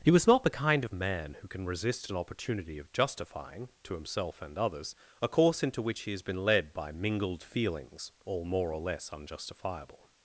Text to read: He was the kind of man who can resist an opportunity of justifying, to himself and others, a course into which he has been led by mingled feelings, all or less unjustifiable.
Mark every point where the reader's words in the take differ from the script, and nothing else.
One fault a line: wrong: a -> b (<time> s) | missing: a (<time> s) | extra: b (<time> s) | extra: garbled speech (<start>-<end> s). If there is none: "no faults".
extra: not (0.2 s)
extra: more (8.4 s)